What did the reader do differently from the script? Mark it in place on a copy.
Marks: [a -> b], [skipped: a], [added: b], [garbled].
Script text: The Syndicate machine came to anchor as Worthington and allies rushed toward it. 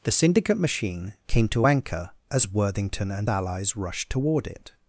The Syndicate machine came to anchor as Worthington and allies rushed toward it.